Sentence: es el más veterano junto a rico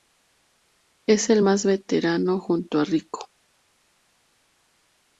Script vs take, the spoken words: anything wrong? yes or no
no